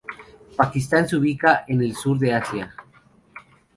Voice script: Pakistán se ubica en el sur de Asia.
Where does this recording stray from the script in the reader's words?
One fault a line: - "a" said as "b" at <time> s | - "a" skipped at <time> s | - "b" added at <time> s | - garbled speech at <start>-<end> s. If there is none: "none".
none